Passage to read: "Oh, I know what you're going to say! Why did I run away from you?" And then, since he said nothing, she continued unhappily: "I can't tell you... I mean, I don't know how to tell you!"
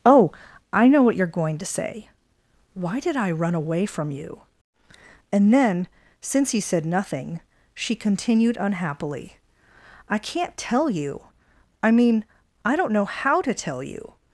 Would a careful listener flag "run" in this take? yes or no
no